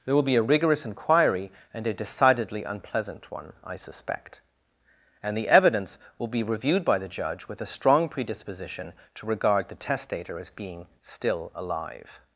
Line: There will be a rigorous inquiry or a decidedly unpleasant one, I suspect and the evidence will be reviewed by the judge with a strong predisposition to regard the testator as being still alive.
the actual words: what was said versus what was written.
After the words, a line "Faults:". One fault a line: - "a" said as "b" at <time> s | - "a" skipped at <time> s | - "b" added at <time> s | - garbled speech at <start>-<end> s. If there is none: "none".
There will be a rigorous inquiry and a decidedly unpleasant one, I suspect and the evidence will be reviewed by the judge with a strong predisposition to regard the testator as being still alive.
Faults:
- "or" said as "and" at 1.7 s